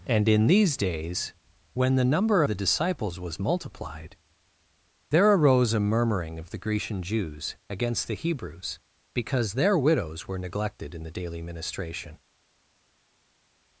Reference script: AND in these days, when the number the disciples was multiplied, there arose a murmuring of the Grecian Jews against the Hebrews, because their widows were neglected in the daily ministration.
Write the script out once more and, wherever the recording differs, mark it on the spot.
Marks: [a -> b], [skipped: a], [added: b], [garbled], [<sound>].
AND in these days, when the number the disciples was multiplied, there arose a murmuring of the Grecian Jews against the Hebrews, because their widows were neglected in the daily ministration.